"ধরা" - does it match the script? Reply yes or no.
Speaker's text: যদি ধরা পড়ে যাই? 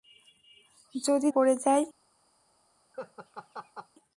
no